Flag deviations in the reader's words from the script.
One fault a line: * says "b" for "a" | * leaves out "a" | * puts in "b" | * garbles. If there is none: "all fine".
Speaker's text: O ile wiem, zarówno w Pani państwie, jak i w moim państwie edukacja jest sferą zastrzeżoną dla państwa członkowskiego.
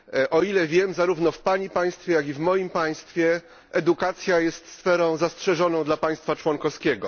all fine